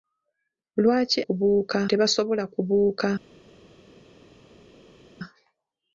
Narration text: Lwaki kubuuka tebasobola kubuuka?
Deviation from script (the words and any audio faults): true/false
false